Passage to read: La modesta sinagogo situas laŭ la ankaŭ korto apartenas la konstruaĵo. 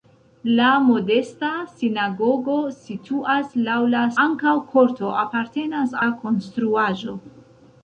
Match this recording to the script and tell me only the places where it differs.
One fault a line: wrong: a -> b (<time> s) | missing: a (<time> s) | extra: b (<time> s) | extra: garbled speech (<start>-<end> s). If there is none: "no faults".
no faults